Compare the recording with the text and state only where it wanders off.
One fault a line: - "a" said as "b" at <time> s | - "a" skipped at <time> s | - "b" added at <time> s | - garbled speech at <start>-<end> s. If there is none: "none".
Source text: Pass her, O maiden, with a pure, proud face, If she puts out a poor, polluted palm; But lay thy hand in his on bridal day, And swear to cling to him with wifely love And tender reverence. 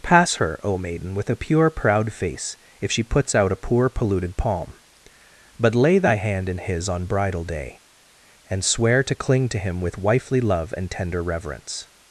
none